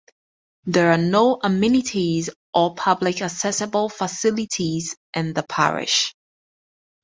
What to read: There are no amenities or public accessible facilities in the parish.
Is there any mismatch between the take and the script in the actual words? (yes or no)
no